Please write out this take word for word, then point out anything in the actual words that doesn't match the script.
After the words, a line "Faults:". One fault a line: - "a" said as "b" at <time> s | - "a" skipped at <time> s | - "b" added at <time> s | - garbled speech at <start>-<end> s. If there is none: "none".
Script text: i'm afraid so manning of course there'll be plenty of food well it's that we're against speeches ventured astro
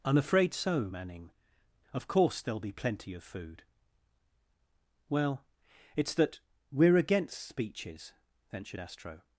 i'm afraid so manning of course there'll be plenty of food well it's that we're against speeches ventured astro
Faults:
none